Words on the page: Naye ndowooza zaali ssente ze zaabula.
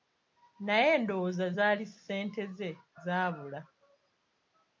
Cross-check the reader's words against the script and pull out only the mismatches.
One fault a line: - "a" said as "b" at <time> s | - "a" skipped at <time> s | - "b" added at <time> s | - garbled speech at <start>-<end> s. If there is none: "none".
none